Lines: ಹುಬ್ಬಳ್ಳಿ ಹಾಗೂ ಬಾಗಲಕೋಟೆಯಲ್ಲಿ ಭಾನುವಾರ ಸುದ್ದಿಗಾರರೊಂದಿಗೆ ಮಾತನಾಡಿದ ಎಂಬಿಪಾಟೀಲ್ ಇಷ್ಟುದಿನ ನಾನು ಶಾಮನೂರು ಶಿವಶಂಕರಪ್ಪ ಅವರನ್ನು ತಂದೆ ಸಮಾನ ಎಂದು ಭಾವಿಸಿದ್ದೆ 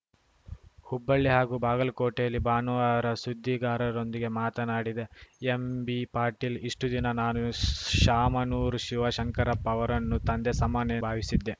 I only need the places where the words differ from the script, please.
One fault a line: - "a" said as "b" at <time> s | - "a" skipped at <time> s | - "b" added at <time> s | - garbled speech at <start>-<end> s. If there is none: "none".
- "ಎಂದು" skipped at 11.0 s